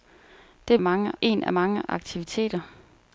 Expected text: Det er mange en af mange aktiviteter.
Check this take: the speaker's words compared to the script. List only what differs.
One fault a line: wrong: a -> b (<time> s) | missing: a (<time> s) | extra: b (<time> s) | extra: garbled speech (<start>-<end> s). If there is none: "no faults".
no faults